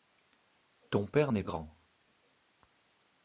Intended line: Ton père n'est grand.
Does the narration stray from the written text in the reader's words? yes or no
no